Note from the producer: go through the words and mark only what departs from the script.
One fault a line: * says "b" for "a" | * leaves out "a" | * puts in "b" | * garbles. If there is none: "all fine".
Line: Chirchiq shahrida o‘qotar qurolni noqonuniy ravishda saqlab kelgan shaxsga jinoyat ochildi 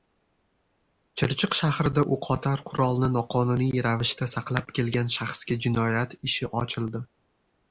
* puts in "ishi"